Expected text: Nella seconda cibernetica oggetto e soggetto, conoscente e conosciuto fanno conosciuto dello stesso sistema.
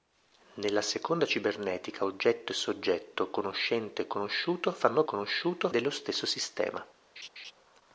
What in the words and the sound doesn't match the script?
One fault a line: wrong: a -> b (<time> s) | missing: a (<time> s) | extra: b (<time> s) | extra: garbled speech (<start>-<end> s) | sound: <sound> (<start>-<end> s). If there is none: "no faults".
sound: laugh (7.2-7.5 s)